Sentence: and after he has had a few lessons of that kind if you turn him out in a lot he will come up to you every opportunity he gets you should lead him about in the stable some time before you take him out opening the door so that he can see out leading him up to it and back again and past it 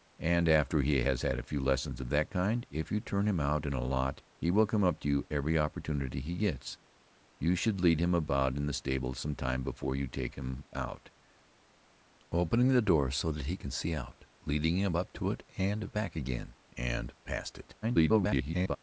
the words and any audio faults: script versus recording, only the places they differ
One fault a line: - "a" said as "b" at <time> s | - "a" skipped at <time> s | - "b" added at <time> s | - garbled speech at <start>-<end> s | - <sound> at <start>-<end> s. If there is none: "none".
- garbled speech at 17.8-18.8 s